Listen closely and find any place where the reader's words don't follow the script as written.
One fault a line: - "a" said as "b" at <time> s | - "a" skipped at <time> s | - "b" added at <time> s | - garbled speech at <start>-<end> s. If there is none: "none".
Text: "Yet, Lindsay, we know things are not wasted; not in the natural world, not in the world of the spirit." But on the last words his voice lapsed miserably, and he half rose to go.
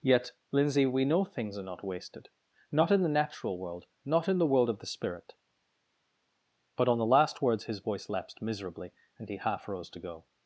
none